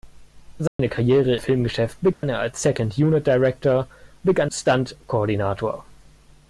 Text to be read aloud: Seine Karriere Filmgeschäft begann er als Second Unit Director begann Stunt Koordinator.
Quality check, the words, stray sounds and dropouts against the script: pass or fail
fail